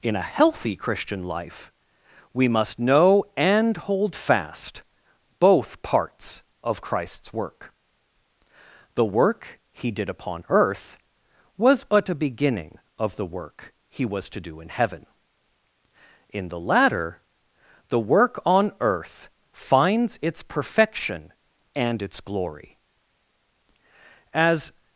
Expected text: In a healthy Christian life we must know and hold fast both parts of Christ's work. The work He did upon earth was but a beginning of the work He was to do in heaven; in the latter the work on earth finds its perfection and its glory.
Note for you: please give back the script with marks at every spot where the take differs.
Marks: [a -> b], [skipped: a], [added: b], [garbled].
In a healthy Christian life we must know and hold fast both parts of Christ's work. The work He did upon earth was but a beginning of the work He was to do in heaven; in the latter the work on earth finds its perfection and its glory. [added: As]